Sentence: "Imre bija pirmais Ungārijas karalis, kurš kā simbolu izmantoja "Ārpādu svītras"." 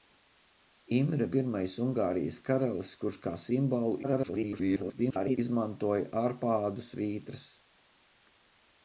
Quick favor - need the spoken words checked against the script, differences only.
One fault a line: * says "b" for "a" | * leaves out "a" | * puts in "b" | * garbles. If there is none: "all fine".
* leaves out "bija"
* garbles